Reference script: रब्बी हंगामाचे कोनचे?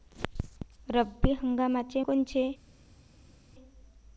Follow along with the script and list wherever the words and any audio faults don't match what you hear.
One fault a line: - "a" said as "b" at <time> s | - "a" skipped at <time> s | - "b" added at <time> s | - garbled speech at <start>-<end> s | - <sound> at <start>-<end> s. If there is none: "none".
none